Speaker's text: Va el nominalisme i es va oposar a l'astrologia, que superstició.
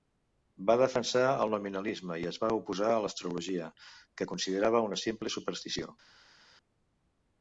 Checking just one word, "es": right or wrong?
right